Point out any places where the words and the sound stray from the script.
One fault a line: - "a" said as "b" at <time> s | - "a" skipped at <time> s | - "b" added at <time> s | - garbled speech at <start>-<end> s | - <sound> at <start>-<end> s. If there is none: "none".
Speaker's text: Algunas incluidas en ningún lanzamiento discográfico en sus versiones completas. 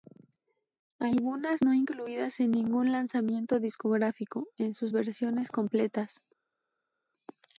- "no" added at 1.6 s